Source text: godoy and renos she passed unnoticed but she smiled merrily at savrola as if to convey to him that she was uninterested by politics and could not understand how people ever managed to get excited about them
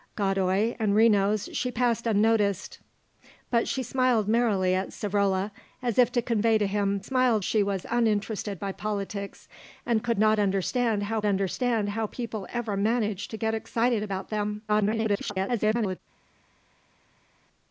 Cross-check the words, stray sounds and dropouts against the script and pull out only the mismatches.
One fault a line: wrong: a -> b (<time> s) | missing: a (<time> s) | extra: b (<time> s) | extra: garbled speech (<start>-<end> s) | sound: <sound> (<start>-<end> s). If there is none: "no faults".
wrong: that -> smiled (7.0 s)
extra: understand how (11.2 s)
extra: garbled speech (14.7-16.0 s)